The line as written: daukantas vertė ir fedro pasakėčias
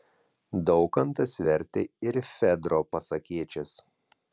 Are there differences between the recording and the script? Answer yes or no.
no